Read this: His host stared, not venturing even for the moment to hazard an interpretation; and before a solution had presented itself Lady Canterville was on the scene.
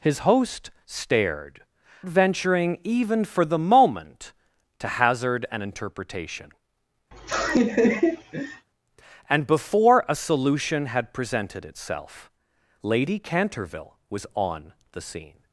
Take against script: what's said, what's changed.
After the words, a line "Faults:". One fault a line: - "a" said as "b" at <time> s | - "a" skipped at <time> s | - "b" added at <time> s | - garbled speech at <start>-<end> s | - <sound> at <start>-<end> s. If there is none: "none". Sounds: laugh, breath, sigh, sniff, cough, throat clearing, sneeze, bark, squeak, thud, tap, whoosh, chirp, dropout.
His host stared, venturing even for the moment to hazard an interpretation; and before a solution had presented itself Lady Canterville was on the scene.
Faults:
- "not" skipped at 1.6 s
- laugh at 7.1-8.7 s